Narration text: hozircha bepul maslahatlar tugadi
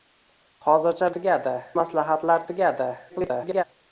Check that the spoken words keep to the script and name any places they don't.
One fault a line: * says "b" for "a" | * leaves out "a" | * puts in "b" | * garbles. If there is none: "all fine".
* says "tugadi" for "bepul"
* garbles